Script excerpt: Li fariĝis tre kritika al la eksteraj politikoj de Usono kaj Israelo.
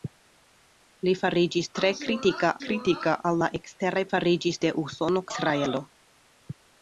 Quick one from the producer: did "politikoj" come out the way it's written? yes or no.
no